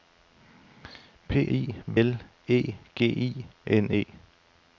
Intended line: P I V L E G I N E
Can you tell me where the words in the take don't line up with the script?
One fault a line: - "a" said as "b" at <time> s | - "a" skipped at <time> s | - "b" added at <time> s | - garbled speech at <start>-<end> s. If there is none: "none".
none